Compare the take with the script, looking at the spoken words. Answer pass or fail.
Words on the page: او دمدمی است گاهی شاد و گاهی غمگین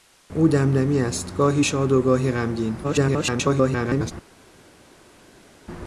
fail